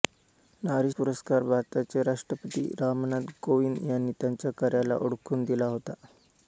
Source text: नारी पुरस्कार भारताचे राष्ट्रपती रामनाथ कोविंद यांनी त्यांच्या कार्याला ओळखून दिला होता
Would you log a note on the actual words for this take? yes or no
no